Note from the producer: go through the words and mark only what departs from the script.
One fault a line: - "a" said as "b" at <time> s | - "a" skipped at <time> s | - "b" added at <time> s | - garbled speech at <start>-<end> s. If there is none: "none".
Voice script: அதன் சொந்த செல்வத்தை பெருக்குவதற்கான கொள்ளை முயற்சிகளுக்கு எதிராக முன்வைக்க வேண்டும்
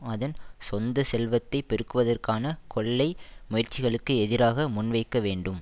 none